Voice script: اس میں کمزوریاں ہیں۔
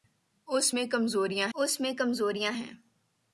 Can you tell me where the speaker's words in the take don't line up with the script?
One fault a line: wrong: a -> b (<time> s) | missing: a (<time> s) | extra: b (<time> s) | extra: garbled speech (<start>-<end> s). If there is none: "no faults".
extra: اس میں کمزوریاں (1.5 s)